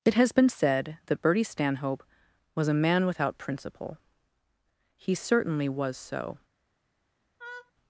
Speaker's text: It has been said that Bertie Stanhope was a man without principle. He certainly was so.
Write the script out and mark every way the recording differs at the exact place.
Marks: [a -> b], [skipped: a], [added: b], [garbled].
It has been said that Bertie Stanhope was a man without principle. He certainly was so.